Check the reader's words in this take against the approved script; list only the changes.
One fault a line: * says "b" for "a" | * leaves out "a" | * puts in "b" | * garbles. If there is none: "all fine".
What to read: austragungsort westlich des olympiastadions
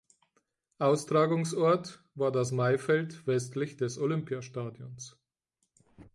* puts in "war das maifeld"